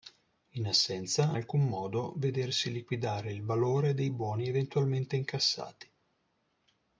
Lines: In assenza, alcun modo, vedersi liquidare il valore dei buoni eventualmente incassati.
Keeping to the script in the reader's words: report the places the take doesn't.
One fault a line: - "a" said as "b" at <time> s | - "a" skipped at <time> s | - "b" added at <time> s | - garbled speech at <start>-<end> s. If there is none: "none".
none